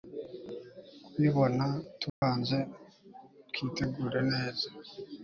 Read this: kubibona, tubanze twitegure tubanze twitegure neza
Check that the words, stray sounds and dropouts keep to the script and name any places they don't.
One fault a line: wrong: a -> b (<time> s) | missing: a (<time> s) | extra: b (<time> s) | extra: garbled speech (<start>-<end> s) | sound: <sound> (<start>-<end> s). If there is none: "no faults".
sound: dropout (2.1-2.2 s)
missing: tubanze twitegure (4.2 s)